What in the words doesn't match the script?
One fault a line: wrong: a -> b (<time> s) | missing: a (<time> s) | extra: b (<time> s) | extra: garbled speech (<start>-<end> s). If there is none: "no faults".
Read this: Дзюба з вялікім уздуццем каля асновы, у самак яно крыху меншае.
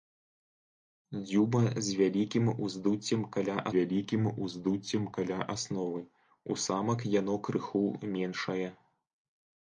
extra: вялікім уздуццем каля (3.7 s)